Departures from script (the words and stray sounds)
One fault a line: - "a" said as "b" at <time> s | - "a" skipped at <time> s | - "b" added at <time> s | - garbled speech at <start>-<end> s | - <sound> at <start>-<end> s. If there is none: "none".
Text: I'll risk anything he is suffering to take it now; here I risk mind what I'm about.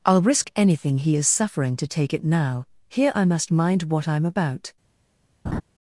- "risk" said as "must" at 3.2 s
- laugh at 5.4-5.6 s